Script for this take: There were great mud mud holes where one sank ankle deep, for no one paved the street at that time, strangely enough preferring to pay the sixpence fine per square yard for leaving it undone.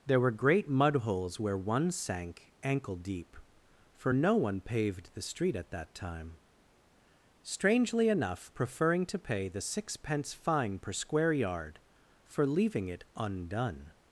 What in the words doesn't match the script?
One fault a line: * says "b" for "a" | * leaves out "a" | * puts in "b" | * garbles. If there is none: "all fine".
* leaves out "mud"